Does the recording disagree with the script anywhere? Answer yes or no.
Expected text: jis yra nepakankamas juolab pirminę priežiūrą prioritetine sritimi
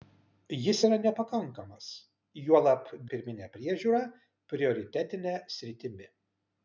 no